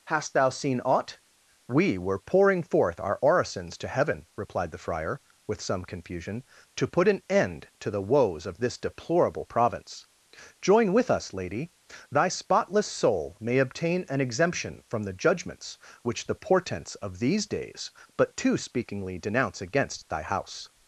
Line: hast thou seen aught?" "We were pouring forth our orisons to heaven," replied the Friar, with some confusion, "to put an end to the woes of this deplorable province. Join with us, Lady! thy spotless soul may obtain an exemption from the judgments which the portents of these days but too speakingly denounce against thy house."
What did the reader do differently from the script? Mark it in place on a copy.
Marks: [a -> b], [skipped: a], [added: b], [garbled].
hast thou seen aught?" "We were pouring forth our orisons to heaven," replied the Friar, with some confusion, "to put an end to the woes of this deplorable province. Join with us, Lady! thy spotless soul may obtain an exemption from the judgments which the portents of these days but too speakingly denounce against thy house."